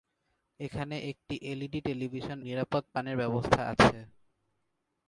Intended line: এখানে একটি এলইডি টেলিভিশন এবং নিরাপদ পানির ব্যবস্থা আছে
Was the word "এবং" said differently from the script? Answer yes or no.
yes